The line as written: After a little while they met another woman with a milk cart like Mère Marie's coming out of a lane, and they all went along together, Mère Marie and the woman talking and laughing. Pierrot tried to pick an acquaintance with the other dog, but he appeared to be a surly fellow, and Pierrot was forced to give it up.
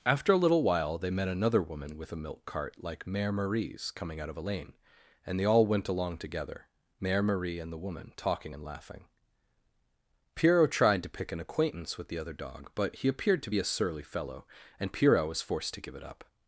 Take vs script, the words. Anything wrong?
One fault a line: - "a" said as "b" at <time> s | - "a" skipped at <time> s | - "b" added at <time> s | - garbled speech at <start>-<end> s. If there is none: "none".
none